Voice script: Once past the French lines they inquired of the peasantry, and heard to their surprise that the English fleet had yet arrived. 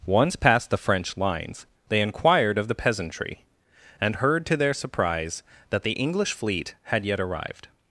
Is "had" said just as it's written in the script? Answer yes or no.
yes